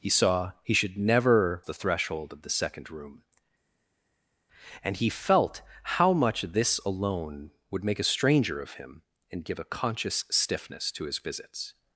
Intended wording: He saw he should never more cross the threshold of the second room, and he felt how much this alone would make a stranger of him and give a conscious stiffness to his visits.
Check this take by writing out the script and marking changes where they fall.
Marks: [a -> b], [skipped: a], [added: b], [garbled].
He saw he should never [skipped: more cross] the threshold of the second room, and he felt how much this alone would make a stranger of him and give a conscious stiffness to his visits.